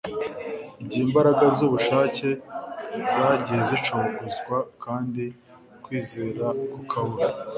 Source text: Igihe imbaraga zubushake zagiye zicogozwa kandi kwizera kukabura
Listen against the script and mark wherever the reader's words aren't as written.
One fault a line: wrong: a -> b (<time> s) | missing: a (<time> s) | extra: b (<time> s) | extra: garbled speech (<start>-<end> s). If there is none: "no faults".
no faults